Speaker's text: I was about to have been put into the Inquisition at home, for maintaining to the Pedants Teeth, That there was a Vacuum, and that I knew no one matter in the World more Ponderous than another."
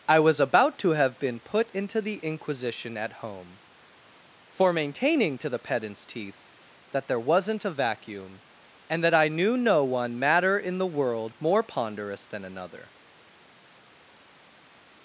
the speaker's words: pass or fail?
fail